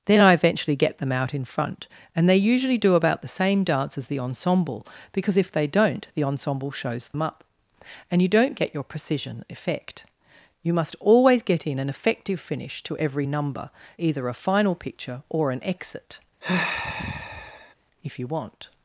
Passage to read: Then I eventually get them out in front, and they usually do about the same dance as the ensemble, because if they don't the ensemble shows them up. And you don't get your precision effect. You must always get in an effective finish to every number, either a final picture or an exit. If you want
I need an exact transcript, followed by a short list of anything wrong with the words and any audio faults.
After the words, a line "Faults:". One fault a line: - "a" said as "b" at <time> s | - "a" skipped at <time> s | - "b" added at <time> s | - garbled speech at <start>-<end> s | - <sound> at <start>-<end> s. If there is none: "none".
Then I eventually get them out in front, and they usually do about the same dance as the ensemble, because if they don't the ensemble shows them up. And you don't get your precision effect. You must always get in an effective finish to every number, either a final picture or an exit. If you want
Faults:
- dropout at 7.1-7.1 s
- sigh at 16.4-17.7 s